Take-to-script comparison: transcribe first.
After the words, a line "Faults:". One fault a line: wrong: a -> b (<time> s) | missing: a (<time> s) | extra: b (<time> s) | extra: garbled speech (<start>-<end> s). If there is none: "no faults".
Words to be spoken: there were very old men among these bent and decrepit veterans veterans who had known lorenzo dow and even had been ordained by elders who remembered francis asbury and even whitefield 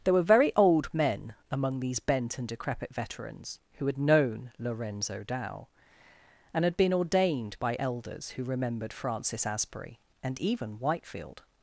there were very old men among these bent and decrepit veterans who had known lorenzo dow and had been ordained by elders who remembered francis asbury and even whitefield
Faults:
missing: veterans (3.6 s)
missing: even (6.7 s)